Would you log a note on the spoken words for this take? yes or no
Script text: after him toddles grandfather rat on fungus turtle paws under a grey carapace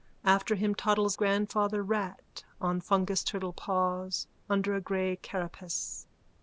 no